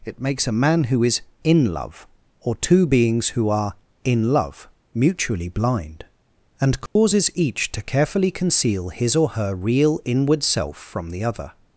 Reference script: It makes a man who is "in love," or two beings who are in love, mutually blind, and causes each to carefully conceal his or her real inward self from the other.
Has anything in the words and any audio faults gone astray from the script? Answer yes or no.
yes